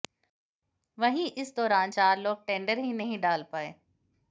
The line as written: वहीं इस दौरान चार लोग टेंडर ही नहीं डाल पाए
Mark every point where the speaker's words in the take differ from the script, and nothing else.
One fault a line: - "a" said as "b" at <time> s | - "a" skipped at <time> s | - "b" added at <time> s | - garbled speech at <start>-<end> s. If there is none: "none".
none